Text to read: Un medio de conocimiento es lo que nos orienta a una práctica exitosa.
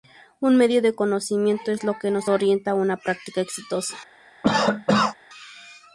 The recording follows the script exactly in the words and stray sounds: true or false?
false